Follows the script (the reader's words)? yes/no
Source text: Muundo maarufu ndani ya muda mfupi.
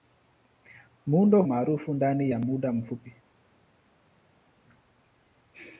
yes